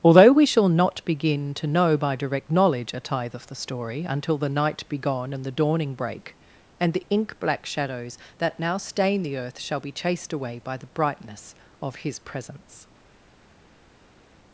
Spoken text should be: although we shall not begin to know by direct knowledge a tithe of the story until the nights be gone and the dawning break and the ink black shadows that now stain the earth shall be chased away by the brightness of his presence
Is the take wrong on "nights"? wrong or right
wrong